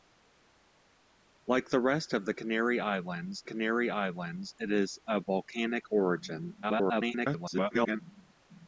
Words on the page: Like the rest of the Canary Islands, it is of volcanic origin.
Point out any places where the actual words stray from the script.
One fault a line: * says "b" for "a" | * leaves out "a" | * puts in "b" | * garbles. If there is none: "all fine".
* puts in "Canary Islands"
* garbles